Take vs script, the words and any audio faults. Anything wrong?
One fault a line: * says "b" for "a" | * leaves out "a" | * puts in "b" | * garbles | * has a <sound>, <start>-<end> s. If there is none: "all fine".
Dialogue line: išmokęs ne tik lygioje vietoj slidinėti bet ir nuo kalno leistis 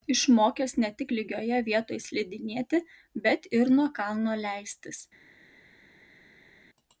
all fine